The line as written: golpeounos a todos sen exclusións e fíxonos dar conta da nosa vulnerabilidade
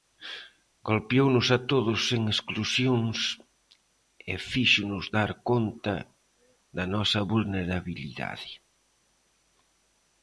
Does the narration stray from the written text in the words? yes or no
no